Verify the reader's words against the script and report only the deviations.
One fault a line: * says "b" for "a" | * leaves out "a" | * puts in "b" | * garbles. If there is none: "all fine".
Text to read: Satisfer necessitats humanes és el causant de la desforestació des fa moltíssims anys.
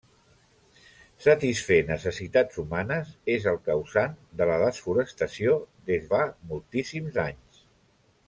all fine